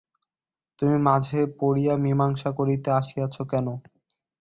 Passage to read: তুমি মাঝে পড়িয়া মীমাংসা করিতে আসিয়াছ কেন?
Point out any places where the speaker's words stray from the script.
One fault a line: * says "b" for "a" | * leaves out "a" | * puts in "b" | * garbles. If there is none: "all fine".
all fine